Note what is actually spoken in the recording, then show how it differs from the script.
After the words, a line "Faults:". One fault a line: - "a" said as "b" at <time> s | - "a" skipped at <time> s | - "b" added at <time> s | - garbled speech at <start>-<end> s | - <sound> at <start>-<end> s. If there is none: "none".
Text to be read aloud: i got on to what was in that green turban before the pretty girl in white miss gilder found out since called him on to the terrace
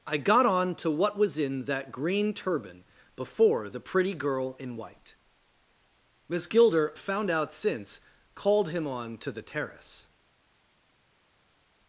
i got on to what was in that green turban before the pretty girl in white miss gilder found out since called him on to the terrace
Faults:
none